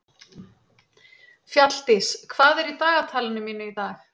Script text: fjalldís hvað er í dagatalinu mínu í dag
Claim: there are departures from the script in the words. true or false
false